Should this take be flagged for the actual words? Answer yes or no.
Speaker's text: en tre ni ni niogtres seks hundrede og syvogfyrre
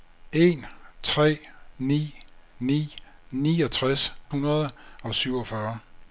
yes